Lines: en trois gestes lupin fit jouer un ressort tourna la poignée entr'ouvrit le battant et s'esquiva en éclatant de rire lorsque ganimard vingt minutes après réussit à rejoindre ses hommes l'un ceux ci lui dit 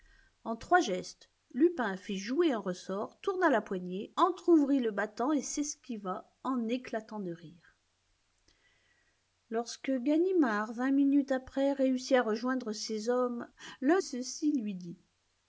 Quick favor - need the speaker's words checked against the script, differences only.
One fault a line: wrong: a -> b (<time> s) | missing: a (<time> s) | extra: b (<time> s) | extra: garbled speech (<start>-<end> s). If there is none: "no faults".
no faults